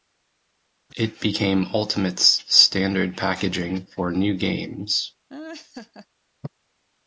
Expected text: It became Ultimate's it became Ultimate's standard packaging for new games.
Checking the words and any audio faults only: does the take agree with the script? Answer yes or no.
no